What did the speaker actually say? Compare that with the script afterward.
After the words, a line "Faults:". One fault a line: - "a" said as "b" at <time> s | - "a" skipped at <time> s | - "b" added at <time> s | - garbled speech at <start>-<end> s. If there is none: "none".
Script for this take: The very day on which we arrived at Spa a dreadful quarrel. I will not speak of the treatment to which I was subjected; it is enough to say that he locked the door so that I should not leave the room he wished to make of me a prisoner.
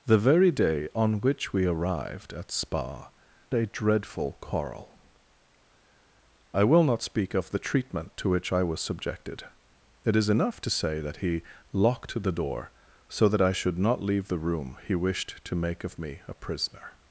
The very day on which we arrived at Spa a dreadful quarrel. I will not speak of the treatment to which I was subjected; it is enough to say that he locked the door so that I should not leave the room he wished to make of me a prisoner.
Faults:
none